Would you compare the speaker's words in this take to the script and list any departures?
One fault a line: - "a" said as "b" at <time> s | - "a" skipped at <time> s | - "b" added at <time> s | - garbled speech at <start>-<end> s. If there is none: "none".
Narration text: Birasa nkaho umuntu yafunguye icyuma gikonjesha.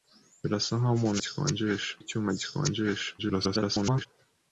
- "yafunguye" said as "gikonjesha" at 1.2 s
- garbled speech at 3.2-4.1 s